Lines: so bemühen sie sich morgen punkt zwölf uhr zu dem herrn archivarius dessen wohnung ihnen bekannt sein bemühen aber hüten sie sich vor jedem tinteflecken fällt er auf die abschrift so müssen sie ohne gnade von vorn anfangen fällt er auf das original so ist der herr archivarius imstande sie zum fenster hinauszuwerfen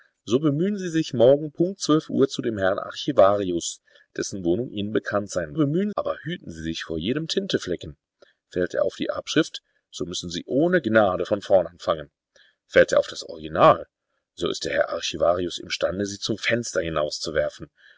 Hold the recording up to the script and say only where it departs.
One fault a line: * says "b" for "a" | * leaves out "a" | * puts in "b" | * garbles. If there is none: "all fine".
all fine